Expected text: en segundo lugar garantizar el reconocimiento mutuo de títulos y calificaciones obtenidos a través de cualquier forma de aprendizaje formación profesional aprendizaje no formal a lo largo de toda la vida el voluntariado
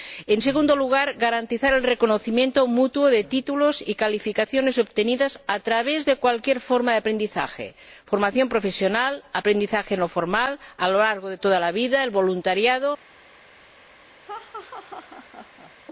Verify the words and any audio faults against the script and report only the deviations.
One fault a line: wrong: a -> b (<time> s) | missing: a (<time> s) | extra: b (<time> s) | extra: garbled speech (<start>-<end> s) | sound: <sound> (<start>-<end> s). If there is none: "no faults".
sound: laugh (14.2-15.7 s)